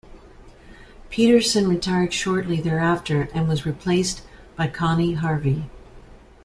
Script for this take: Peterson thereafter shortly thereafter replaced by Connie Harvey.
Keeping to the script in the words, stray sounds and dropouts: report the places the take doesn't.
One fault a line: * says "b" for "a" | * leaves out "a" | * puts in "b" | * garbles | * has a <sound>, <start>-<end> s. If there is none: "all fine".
* says "retired" for "thereafter"
* puts in "and was"